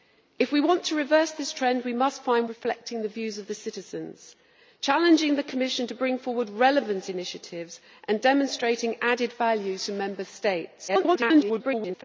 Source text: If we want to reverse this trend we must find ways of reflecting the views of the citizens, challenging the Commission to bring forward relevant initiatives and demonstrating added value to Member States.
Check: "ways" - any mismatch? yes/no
yes